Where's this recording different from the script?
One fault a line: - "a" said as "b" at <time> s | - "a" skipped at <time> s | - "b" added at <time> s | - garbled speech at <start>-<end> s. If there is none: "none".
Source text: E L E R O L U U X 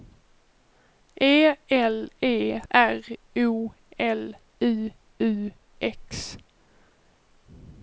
none